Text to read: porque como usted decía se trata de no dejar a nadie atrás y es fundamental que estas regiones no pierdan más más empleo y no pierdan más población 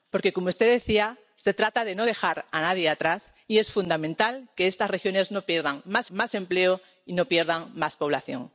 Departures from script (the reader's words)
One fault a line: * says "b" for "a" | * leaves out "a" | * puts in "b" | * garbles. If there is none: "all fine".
all fine